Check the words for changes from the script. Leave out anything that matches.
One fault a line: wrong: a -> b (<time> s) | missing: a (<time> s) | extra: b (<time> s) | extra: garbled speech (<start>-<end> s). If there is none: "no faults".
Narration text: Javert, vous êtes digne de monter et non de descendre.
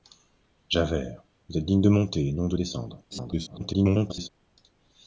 extra: garbled speech (3.1-4.3 s)